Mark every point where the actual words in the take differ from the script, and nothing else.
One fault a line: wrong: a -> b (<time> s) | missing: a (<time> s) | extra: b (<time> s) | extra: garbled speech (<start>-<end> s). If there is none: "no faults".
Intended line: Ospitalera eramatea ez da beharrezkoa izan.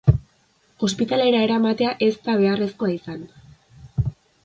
no faults